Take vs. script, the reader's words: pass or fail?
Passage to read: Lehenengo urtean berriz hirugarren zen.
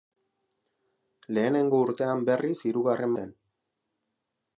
pass